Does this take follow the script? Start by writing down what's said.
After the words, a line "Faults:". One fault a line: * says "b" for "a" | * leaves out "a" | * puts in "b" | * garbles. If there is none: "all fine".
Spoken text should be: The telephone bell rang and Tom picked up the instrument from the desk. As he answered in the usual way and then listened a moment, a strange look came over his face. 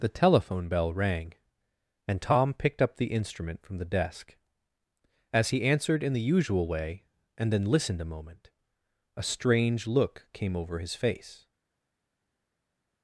The telephone bell rang and Tom picked up the instrument from the desk. As he answered in the usual way and then listened a moment, a strange look came over his face.
Faults:
all fine